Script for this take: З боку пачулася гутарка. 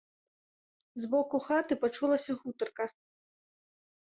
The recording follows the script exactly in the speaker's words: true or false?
false